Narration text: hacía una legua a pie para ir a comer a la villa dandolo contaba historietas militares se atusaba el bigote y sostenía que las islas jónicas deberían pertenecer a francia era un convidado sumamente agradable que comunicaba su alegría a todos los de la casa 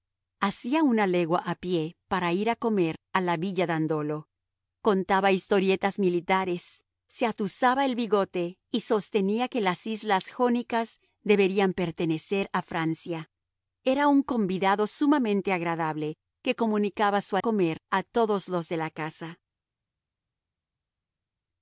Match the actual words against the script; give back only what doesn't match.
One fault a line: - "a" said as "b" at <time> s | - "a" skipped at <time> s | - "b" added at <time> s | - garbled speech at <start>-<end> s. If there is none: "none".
- "alegría" said as "comer" at 17.4 s